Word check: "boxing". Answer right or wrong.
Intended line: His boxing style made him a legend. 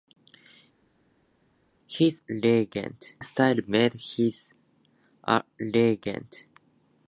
wrong